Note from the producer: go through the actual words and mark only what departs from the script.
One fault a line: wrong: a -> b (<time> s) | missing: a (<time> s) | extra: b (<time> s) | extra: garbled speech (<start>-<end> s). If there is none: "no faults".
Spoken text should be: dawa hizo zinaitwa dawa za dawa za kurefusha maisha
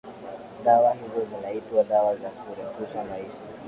missing: dawa za (2.3 s)